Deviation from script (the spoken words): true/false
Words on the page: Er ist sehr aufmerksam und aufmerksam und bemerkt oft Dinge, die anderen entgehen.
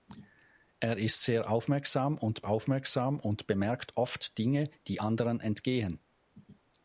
false